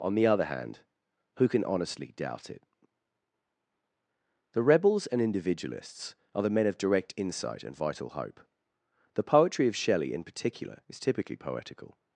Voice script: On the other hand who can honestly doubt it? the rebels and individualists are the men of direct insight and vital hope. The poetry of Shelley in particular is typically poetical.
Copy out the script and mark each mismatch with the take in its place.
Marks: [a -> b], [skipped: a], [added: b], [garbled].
On the other hand who can honestly doubt it? the rebels and individualists are the men of direct insight and vital hope. The poetry of Shelley in particular is typically poetical.